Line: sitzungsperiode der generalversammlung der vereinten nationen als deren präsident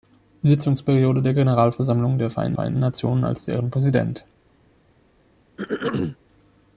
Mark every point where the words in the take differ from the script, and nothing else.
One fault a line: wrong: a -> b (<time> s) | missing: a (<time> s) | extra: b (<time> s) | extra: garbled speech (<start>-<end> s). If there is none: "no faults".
extra: vereinten (2.5 s)